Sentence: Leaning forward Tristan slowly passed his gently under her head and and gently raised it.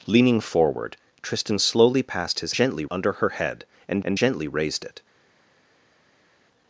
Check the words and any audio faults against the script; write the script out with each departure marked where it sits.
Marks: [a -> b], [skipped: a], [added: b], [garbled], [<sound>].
Leaning forward Tristan slowly passed his gently under her head and and gently raised it.